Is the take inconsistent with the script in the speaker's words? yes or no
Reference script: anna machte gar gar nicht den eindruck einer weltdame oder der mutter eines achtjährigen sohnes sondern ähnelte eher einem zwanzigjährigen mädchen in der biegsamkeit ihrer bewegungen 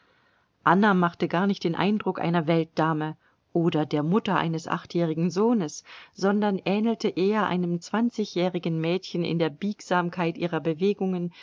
yes